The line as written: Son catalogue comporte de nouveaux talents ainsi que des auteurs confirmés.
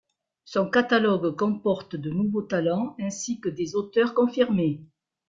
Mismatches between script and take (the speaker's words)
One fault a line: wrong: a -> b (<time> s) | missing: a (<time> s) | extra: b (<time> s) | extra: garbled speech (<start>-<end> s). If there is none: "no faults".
no faults